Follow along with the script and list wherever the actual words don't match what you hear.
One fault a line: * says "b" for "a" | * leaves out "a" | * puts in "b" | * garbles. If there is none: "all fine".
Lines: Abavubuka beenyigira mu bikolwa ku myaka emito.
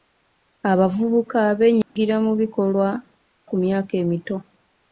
all fine